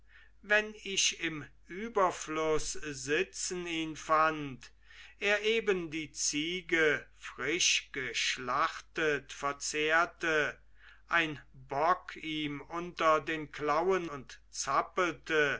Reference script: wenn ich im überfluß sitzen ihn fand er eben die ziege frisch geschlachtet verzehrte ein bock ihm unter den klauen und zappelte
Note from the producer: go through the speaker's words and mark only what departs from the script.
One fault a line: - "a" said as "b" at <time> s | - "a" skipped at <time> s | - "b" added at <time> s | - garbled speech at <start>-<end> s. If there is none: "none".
none